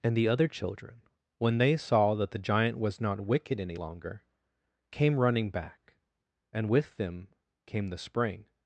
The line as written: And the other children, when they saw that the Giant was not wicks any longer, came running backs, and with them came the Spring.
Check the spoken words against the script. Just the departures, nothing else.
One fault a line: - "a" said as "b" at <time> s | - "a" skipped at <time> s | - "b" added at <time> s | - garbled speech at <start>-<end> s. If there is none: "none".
- "wicks" said as "wicked" at 3.2 s
- "backs" said as "back" at 5.5 s